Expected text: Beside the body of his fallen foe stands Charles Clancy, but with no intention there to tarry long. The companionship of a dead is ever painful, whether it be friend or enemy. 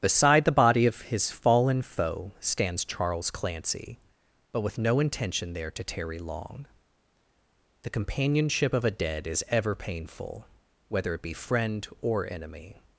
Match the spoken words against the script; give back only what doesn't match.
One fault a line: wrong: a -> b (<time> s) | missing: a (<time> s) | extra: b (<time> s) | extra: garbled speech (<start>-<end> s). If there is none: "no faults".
no faults